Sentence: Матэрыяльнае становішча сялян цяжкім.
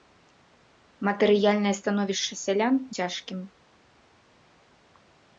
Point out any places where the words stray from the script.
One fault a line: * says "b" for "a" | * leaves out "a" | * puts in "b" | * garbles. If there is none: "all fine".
all fine